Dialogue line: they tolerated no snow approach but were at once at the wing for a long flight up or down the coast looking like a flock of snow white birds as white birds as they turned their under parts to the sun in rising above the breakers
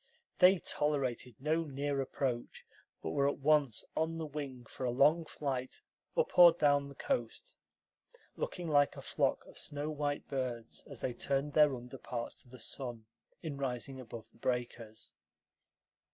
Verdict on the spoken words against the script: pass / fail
fail